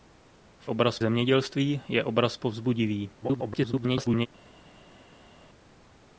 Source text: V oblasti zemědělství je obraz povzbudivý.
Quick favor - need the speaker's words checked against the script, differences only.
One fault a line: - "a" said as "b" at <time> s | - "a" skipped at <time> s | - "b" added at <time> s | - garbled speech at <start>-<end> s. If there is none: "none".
- "oblasti" said as "obraz" at 0.7 s
- garbled speech at 3.2-4.3 s